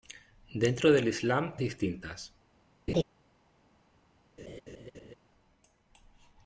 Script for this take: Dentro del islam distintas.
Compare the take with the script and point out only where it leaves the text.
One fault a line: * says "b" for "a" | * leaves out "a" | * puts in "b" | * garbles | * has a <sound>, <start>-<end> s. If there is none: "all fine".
* has a laugh, 2.9-3.0 s
* has a laugh, 4.4-5.1 s